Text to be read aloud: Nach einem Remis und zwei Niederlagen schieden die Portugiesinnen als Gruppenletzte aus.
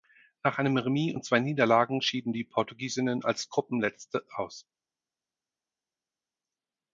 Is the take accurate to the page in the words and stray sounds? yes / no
yes